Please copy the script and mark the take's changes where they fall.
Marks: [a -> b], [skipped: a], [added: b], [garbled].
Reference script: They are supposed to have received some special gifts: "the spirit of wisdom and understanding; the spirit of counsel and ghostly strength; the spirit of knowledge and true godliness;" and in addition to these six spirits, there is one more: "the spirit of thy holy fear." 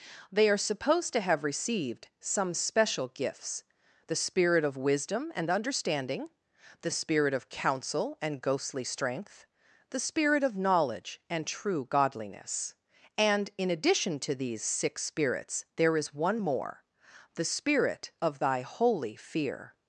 They are supposed to have received some special gifts: "the spirit of wisdom and understanding; the spirit of counsel and ghostly strength; the spirit of knowledge and true godliness;" and in addition to these six spirits, there is one more: "the spirit of thy holy fear."